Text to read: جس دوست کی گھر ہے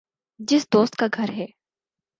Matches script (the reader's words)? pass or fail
fail